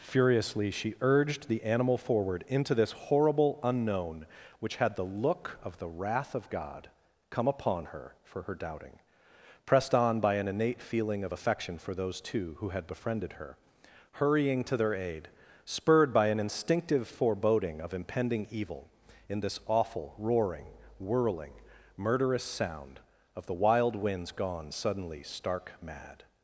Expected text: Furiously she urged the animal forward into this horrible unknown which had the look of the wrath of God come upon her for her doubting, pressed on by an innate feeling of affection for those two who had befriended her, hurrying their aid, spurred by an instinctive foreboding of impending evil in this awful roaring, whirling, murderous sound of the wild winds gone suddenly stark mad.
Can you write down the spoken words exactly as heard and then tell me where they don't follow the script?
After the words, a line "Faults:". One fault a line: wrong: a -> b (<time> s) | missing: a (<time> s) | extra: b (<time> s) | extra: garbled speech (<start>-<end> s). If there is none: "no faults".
Furiously she urged the animal forward into this horrible unknown which had the look of the wrath of God come upon her for her doubting, pressed on by an innate feeling of affection for those two who had befriended her, hurrying to their aid, spurred by an instinctive foreboding of impending evil in this awful roaring, whirling, murderous sound of the wild winds gone suddenly stark mad.
Faults:
extra: to (14.6 s)